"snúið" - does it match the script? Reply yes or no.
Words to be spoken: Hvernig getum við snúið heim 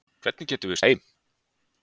no